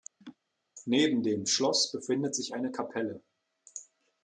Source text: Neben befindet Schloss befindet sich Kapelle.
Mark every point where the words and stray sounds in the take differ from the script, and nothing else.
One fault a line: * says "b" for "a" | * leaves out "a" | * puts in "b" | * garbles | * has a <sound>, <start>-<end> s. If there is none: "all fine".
* has a laugh, 0.2-0.4 s
* says "dem" for "befindet"
* puts in "eine"